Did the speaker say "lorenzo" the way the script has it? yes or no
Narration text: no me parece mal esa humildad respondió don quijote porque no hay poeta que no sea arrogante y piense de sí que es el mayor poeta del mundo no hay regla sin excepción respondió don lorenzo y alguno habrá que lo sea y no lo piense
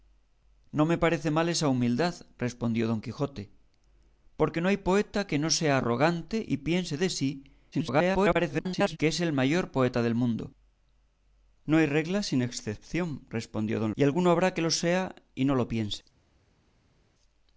no